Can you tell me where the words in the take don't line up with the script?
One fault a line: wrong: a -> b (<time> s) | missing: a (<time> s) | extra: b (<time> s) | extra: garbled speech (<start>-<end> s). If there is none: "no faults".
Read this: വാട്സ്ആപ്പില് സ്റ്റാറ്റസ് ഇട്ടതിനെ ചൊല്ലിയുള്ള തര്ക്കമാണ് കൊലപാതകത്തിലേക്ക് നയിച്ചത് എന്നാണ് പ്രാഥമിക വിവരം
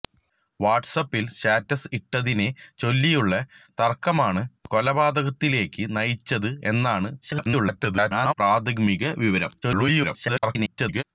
extra: garbled speech (7.2-8.3 s)
extra: garbled speech (9.6-11.0 s)